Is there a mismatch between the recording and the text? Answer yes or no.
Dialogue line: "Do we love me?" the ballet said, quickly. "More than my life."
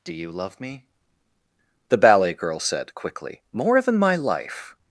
yes